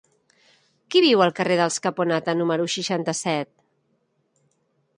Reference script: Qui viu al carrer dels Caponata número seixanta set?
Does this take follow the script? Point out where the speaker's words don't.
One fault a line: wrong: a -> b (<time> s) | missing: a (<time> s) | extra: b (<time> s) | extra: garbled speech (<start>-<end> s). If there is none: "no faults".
no faults